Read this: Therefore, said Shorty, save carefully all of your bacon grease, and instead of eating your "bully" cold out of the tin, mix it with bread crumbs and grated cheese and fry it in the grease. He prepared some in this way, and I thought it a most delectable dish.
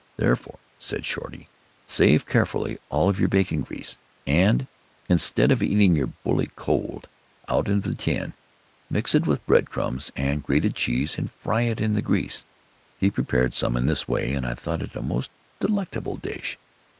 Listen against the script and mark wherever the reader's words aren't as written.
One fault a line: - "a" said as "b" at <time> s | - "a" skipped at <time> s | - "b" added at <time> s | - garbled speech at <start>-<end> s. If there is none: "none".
none